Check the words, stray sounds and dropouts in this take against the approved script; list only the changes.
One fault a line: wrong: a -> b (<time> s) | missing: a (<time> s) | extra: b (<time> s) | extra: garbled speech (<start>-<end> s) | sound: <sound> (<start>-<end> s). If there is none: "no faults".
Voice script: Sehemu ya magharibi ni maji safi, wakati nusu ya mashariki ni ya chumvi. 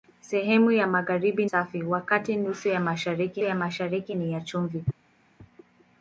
missing: ni maji (1.4 s)
extra: ya mashariki (3.4 s)